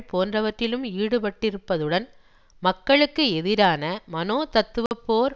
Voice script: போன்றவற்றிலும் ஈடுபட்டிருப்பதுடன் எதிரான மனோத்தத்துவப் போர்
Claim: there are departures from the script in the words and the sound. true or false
true